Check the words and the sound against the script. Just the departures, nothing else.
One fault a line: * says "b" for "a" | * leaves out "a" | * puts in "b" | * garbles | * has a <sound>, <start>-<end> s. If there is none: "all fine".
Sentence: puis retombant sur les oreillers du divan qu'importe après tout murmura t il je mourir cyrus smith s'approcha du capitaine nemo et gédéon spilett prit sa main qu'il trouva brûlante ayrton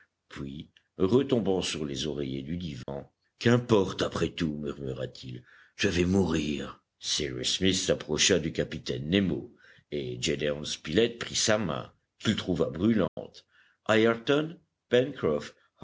* has a dropout, 2.8-2.9 s
* puts in "vais"
* has a dropout, 13.1-13.2 s